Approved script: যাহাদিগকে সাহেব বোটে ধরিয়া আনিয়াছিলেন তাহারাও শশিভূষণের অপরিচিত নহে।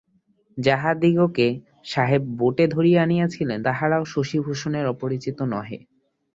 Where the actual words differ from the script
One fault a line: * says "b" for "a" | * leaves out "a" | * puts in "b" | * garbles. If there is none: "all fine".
all fine